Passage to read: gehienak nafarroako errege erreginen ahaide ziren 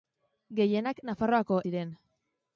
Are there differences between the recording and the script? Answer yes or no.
yes